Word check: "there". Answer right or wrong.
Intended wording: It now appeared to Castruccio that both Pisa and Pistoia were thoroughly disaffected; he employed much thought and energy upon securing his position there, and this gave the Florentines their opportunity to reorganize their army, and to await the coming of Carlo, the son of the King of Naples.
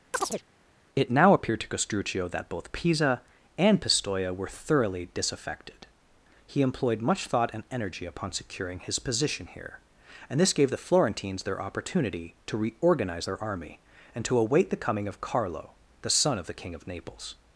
wrong